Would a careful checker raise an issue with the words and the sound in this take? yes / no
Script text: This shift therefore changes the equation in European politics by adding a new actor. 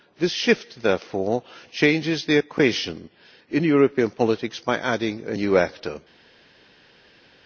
no